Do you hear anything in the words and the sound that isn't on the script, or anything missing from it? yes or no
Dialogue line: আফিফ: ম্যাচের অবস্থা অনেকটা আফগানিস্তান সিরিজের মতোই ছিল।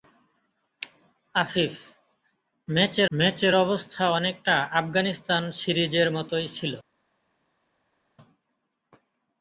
yes